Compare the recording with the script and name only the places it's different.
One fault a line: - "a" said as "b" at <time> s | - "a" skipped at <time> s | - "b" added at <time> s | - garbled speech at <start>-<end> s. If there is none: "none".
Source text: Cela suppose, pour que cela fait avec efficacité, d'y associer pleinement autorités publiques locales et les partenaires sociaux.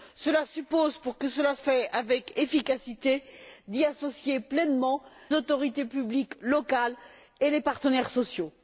none